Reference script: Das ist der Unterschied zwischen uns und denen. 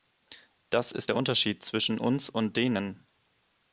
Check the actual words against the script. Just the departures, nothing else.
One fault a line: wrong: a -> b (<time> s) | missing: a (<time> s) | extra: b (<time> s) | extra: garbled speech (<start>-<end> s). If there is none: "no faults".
no faults